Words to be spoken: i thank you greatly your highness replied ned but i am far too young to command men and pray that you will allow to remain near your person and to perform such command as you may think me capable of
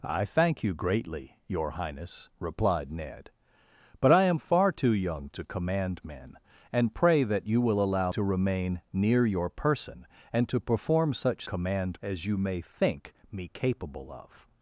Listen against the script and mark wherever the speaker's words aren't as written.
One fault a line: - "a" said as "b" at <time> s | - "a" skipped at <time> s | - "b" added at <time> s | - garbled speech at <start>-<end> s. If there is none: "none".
none